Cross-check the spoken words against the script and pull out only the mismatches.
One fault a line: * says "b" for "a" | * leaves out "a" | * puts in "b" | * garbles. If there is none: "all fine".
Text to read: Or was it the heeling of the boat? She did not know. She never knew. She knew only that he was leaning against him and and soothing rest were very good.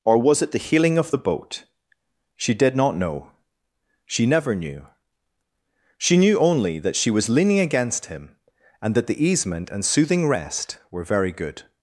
* says "she" for "he"
* puts in "that the easement"